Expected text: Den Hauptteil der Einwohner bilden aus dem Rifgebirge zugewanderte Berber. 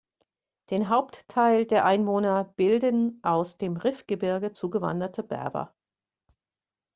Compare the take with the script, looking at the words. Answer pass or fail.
pass